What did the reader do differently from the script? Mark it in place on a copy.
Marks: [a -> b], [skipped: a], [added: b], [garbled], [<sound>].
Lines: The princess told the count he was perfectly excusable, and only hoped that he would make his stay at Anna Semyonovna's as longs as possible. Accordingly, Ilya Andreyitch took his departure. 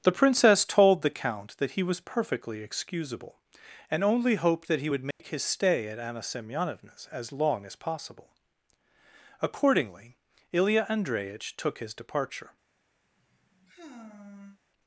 The princess told the count [added: that] he was perfectly excusable, and only hoped that he would make [dropout] his stay at Anna Semyonovna's as [longs -> long] as possible. Accordingly, Ilya Andreyitch took his departure. [sigh]